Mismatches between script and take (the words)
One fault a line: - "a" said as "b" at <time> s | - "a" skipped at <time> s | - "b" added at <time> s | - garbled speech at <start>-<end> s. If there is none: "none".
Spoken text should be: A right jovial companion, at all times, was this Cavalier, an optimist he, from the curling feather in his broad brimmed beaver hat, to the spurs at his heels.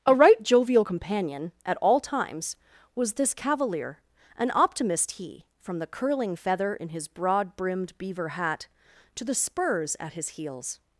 none